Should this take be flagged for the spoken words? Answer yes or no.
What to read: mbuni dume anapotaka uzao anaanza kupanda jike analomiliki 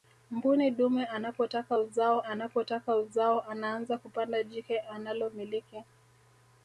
yes